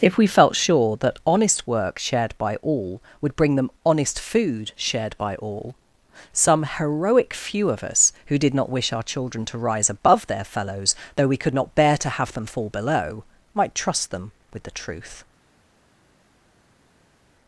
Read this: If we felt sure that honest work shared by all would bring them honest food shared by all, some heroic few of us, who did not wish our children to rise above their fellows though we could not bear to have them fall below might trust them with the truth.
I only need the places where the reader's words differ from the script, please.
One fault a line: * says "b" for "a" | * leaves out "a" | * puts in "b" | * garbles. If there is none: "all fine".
all fine